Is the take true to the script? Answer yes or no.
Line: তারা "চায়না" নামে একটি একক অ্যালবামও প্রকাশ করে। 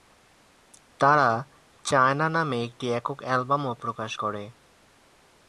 yes